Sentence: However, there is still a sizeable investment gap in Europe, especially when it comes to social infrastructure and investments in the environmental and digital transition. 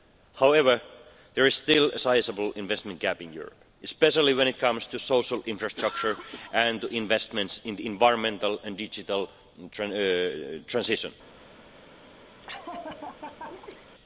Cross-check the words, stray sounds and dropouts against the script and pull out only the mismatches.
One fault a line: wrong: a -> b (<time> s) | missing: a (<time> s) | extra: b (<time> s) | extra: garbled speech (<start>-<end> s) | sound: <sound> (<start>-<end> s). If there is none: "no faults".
sound: laugh (12.4-13.9 s)